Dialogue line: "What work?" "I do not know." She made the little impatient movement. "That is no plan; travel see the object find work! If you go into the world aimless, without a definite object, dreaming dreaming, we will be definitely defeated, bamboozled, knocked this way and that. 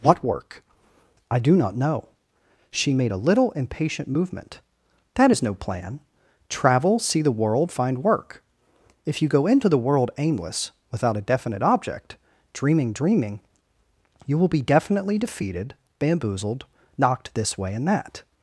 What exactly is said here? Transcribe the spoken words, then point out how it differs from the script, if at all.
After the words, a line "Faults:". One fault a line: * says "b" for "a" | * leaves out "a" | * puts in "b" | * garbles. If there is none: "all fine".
"What work?" "I do not know." She made a little impatient movement. "That is no plan; travel see the world find work! If you go into the world aimless, without a definite object, dreaming dreaming, you will be definitely defeated, bamboozled, knocked this way and that.
Faults:
* says "a" for "the"
* says "world" for "object"
* says "you" for "we"